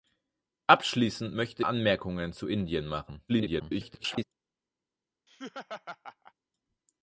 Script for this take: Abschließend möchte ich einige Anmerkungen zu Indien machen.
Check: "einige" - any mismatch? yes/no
yes